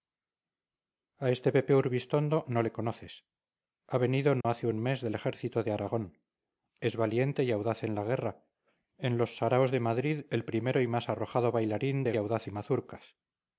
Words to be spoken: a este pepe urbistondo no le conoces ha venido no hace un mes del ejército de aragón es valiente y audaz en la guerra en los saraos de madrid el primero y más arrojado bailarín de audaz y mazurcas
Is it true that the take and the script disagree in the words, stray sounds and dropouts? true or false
true